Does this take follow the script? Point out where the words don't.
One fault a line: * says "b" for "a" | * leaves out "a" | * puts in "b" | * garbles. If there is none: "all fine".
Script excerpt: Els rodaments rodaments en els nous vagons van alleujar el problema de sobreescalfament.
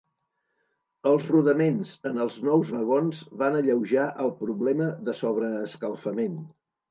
* leaves out "rodaments"